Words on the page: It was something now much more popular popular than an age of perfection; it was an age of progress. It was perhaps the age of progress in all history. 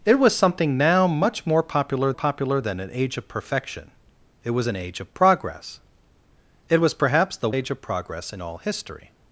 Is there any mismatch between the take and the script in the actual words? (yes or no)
no